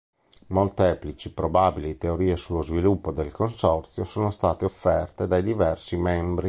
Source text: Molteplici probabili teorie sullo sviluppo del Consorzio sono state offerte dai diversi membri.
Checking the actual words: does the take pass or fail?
pass